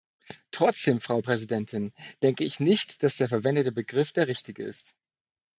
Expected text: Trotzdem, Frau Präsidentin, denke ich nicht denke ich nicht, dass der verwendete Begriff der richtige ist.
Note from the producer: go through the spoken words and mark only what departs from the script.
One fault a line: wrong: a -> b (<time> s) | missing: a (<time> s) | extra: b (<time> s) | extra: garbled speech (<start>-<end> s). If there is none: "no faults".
missing: denke ich nicht (3.0 s)